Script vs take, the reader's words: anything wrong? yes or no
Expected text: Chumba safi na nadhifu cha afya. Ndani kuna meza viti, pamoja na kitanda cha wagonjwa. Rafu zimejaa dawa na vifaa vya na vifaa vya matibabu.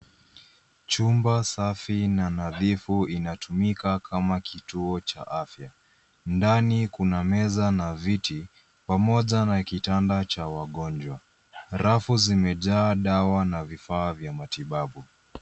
yes